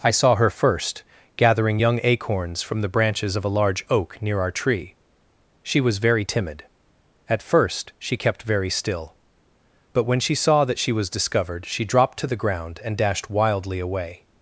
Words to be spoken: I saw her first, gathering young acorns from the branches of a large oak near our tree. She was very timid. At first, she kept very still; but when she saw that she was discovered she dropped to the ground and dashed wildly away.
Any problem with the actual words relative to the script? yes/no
no